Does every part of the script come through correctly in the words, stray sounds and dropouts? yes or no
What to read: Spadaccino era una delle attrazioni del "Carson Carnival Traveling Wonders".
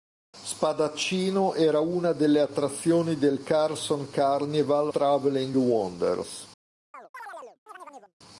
no